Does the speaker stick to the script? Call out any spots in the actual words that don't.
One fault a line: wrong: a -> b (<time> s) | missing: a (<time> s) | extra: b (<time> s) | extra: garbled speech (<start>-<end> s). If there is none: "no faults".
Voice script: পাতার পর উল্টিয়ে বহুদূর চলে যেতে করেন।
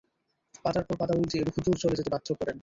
extra: পাতা (1.0 s)
extra: বাধ্য (2.1 s)